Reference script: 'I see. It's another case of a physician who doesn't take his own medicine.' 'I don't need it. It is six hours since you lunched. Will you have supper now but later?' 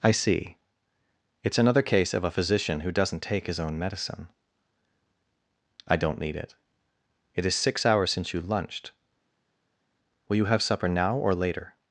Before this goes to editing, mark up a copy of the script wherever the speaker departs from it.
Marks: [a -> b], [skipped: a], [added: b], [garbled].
'I see. It's another case of a physician who doesn't take his own medicine.' 'I don't need it. It is six hours since you lunched. Will you have supper now [but -> or] later?'